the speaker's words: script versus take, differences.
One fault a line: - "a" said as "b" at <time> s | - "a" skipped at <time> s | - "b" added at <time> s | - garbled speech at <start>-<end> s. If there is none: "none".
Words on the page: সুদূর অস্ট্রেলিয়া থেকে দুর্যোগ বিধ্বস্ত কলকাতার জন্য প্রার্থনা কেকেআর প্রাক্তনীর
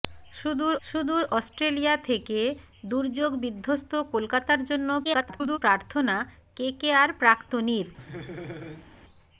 - "সুদূর" added at 0.8 s
- garbled speech at 5.0-5.6 s